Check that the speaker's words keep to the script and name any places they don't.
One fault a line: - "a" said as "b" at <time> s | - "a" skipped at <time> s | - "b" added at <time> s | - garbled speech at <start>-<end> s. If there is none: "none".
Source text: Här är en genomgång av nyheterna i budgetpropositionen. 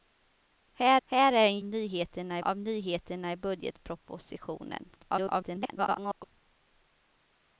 - "här" added at 1.0 s
- "genomgång" said as "nyheterna" at 1.6 s
- garbled speech at 5.0-6.2 s